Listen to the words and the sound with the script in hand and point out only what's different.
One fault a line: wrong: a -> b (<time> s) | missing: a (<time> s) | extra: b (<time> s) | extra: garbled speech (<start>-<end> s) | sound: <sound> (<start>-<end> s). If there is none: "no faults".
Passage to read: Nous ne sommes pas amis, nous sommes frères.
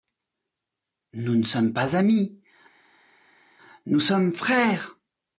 no faults